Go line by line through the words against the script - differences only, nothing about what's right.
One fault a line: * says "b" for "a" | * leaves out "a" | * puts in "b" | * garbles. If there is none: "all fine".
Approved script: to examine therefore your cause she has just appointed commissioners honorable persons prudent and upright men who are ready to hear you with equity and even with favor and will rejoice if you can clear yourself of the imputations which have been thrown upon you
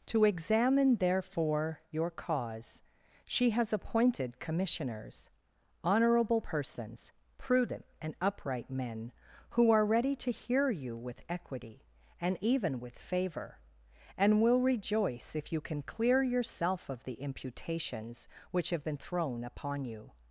* leaves out "just"